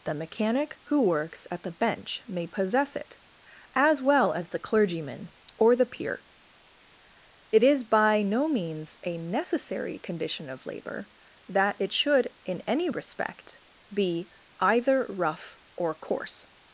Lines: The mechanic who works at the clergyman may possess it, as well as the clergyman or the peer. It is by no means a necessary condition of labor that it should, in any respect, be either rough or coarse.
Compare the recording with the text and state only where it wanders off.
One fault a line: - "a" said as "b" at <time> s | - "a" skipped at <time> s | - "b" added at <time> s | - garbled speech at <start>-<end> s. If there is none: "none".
- "clergyman" said as "bench" at 1.7 s